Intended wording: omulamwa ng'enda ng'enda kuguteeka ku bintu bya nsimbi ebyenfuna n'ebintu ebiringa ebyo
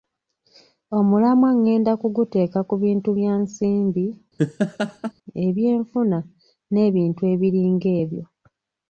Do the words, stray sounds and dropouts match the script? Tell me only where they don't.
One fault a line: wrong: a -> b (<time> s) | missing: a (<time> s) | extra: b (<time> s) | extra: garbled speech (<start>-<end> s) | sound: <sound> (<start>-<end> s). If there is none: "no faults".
missing: ng'enda (1.9 s)
sound: laugh (4.4-5.1 s)